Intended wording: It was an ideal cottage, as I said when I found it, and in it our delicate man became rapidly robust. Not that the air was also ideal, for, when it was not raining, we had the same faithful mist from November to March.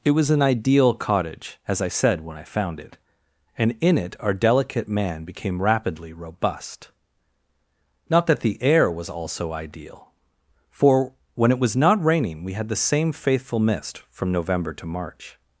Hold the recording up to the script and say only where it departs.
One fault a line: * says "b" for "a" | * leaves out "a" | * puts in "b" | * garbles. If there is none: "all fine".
all fine